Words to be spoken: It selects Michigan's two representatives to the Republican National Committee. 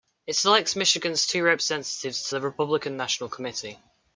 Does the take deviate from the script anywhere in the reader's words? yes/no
no